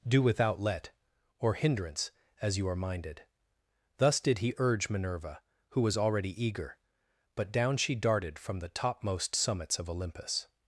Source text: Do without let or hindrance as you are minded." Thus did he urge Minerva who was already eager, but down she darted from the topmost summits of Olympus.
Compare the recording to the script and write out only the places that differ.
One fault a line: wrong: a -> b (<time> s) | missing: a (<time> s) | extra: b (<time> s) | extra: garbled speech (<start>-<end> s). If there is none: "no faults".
no faults